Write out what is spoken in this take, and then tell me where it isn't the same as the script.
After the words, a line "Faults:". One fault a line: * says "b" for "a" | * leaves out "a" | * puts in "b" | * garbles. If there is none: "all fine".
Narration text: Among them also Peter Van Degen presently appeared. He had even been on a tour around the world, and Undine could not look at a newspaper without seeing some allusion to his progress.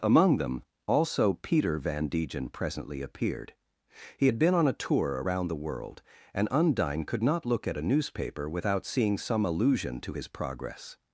Among them also Peter Van Degen presently appeared. He had been on a tour around the world, and Undine could not look at a newspaper without seeing some allusion to his progress.
Faults:
* leaves out "even"